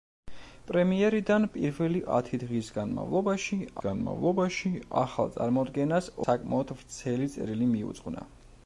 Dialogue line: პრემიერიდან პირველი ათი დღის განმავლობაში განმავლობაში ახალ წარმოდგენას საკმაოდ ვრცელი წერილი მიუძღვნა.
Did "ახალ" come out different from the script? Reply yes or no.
no